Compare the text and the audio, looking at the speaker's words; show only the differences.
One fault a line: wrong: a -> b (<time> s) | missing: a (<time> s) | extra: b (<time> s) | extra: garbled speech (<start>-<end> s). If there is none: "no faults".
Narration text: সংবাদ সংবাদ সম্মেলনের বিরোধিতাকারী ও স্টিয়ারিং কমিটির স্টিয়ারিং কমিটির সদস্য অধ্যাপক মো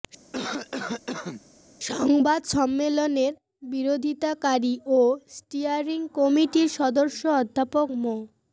missing: সংবাদ (2.4 s)
missing: স্টিয়ারিং কমিটির (6.7 s)